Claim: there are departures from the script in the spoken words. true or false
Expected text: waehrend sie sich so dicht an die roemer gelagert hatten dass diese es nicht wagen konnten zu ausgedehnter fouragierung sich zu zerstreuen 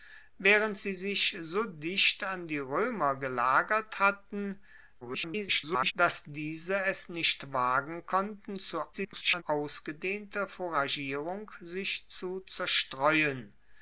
true